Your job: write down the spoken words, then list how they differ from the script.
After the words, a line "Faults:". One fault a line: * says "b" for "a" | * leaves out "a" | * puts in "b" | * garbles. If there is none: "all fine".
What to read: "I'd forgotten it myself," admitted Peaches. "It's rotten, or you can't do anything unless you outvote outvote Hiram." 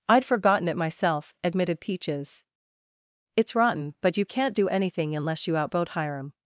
"I'd forgotten it myself," admitted Peaches. "It's rotten, but you can't do anything unless you outvote Hiram."
Faults:
* says "but" for "or"
* leaves out "outvote"